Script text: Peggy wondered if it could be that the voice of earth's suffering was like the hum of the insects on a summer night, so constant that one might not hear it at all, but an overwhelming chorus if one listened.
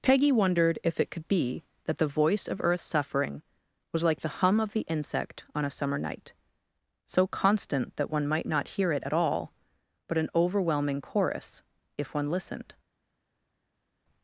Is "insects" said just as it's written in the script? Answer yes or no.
no